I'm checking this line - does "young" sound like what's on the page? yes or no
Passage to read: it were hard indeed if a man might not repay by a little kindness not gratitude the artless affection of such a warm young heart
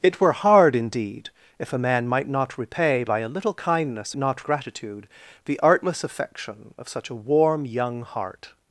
yes